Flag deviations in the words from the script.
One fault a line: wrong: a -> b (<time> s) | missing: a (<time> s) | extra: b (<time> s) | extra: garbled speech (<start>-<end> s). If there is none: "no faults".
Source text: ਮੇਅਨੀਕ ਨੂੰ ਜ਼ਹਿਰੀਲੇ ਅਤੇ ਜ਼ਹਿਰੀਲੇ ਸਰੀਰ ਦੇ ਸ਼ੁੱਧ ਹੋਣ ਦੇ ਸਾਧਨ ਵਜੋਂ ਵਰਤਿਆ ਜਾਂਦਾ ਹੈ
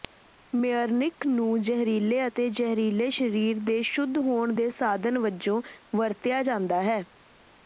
no faults